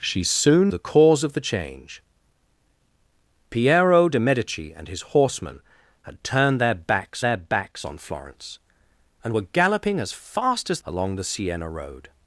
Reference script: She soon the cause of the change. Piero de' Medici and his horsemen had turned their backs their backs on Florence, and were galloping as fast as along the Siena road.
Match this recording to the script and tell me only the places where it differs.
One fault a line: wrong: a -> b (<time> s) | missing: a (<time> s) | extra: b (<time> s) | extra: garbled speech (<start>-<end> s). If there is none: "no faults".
no faults